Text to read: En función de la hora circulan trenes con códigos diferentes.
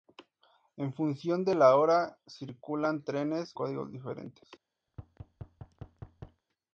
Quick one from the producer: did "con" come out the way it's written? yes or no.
no